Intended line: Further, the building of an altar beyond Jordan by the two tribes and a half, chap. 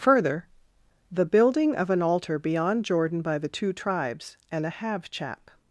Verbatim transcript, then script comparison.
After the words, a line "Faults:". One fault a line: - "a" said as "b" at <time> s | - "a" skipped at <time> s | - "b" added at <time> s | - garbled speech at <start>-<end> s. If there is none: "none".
Further, the building of an altar beyond Jordan by the two tribes and a have, chap.
Faults:
- "half" said as "have" at 4.7 s